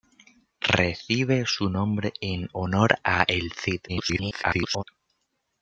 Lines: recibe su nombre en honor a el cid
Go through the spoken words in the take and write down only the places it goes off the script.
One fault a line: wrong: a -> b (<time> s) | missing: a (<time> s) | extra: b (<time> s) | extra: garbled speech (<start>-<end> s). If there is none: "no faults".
extra: garbled speech (3.9-4.8 s)